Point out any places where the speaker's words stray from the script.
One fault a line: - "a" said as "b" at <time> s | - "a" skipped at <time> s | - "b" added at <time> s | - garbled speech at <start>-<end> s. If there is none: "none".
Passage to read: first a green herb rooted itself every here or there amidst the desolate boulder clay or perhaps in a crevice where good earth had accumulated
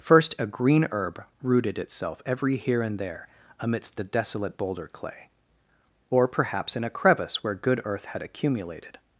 - "or" said as "and" at 2.8 s